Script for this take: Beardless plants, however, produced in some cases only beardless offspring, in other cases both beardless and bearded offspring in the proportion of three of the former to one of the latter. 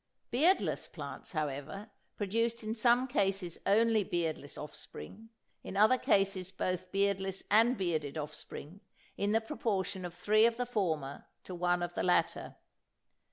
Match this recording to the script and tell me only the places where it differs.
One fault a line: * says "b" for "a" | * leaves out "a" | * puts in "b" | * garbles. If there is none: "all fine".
all fine